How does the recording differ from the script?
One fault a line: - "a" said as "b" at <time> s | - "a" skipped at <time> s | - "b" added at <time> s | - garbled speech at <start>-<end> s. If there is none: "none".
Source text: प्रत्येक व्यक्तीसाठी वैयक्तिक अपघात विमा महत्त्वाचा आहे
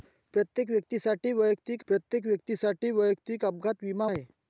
- "प्रत्येक व्यक्तीसाठी वैयक्तिक" added at 1.9 s
- "महत्त्वाचा" skipped at 4.1 s